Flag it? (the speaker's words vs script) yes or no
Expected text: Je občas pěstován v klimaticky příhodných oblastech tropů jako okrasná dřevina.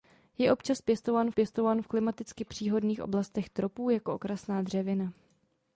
yes